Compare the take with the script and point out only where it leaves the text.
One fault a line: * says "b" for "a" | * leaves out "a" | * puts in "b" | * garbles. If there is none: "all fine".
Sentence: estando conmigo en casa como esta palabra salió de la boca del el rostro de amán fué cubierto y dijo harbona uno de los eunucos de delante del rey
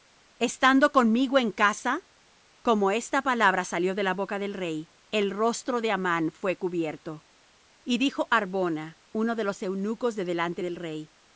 * puts in "rey"